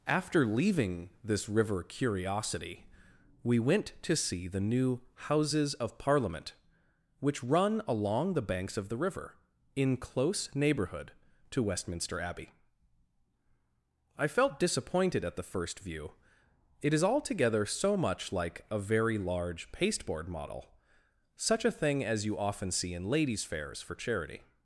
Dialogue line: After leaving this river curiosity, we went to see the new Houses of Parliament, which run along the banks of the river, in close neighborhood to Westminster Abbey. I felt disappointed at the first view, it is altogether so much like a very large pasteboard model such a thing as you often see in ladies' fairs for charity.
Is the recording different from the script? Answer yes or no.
no